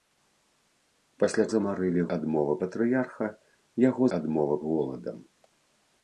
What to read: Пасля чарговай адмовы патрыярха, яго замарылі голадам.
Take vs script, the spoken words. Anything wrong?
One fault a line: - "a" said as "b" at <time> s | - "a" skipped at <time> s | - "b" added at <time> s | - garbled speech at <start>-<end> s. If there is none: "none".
- "чарговай" said as "замарылі" at 1.6 s
- "замарылі" said as "адмовы" at 4.2 s